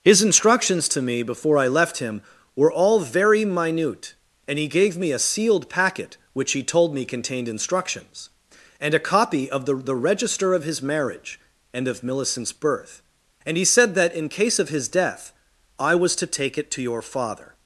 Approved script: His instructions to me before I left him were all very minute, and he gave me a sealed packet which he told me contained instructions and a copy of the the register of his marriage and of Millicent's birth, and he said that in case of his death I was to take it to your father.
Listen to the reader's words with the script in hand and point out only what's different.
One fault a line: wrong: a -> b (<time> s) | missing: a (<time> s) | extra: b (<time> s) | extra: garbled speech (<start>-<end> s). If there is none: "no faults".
no faults